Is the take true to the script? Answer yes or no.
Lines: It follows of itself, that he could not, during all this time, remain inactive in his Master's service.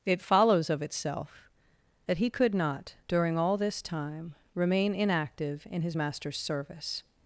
yes